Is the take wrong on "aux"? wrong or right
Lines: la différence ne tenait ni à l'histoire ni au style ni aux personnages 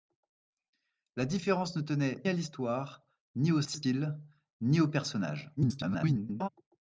right